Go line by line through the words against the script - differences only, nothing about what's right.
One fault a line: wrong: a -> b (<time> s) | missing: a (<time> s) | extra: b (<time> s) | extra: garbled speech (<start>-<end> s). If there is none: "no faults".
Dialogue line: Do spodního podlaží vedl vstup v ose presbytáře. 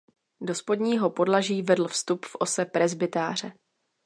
no faults